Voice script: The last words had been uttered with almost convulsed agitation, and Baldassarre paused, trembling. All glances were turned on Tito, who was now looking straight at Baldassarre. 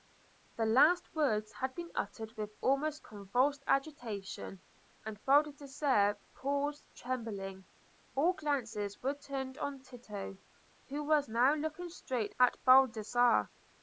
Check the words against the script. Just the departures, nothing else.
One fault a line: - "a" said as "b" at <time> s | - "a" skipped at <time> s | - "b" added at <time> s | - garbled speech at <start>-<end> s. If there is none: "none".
none